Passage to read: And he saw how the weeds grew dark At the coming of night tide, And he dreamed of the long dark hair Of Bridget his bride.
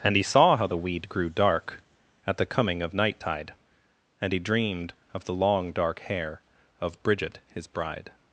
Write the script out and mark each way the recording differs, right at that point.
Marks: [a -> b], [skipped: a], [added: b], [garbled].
And he saw how the [weeds -> weed] grew dark At the coming of night tide, And he dreamed of the long dark hair Of Bridget his bride.